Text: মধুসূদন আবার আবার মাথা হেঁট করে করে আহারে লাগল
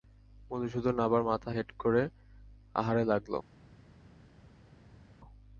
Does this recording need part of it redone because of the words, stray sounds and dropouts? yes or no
yes